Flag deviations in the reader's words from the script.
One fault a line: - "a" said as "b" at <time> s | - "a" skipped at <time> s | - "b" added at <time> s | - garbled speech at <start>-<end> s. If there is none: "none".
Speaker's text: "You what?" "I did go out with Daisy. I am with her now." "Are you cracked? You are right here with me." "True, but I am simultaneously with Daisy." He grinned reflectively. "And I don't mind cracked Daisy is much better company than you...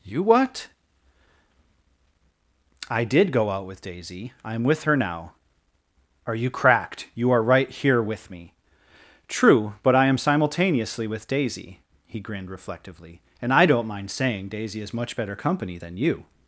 - "cracked" said as "saying" at 14.1 s